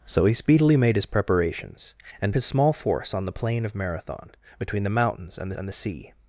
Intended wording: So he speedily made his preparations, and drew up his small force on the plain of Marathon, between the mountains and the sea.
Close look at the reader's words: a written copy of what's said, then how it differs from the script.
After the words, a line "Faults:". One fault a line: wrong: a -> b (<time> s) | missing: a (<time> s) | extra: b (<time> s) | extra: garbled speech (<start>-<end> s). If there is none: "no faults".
So he speedily made his preparations, and his small force on the plain of Marathon, between the mountains and and the sea.
Faults:
missing: drew up (2.3 s)
extra: and (5.6 s)